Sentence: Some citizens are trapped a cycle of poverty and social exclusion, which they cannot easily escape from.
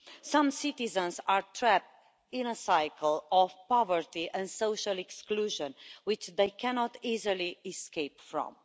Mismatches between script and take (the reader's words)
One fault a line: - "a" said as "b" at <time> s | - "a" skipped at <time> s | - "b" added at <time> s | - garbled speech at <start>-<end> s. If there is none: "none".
- "in" added at 2.3 s